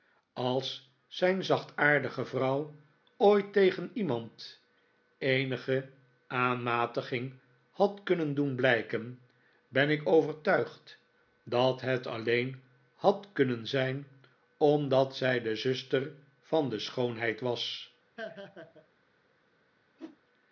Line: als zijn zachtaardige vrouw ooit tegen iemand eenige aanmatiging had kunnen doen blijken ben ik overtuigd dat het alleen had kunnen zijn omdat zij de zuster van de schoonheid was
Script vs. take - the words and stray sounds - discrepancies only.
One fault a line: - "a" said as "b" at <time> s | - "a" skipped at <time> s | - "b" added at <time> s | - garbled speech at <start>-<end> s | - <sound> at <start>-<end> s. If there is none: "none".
- laugh at 18.2-18.9 s
- whoosh at 20.0-20.2 s